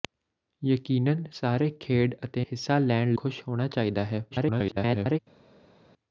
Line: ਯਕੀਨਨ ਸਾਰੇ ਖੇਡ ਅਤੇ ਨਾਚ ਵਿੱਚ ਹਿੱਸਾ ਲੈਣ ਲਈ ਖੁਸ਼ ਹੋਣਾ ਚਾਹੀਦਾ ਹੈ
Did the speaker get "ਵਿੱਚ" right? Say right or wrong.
wrong